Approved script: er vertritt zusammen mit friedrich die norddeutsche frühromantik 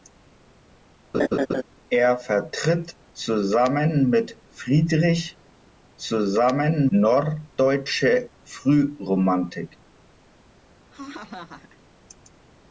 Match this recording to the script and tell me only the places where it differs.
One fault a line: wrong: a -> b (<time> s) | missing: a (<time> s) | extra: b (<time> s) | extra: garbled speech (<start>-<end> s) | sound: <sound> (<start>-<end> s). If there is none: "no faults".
sound: laugh (1.1-1.6 s)
wrong: die -> zusammen (6.0 s)
sound: laugh (10.9-11.8 s)